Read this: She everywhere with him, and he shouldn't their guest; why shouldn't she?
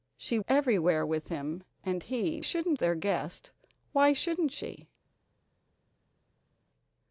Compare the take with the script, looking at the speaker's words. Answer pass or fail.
pass